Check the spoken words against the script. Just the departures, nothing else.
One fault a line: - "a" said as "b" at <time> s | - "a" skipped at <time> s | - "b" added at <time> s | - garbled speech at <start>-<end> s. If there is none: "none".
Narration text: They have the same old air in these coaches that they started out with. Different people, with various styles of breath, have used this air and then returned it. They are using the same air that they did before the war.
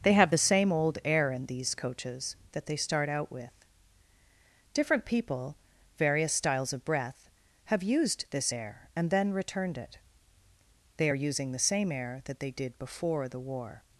- "started" said as "start" at 2.8 s
- "with" skipped at 5.6 s